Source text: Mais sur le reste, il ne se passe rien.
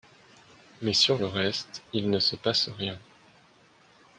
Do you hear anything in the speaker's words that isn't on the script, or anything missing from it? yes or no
no